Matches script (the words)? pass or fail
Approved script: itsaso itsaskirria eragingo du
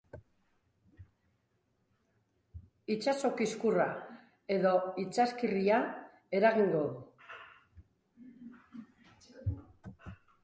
fail